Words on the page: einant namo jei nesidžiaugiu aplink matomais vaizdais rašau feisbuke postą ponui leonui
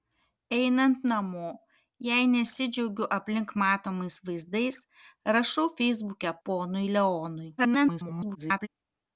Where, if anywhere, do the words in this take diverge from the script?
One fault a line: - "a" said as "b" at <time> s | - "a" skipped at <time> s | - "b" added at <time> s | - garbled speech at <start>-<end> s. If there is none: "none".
- "postą" skipped at 6.3 s
- garbled speech at 7.6-8.7 s